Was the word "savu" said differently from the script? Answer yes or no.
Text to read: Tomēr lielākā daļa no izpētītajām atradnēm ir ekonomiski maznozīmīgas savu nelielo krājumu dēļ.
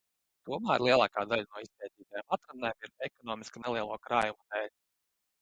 yes